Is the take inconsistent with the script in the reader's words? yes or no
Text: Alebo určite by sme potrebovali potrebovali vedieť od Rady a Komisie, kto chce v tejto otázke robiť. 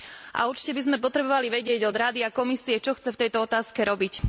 yes